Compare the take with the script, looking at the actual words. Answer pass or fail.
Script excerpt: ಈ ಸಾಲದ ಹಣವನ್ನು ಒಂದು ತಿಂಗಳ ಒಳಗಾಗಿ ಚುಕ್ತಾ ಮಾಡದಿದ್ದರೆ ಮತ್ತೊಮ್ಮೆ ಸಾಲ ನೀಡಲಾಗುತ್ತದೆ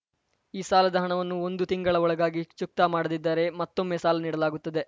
pass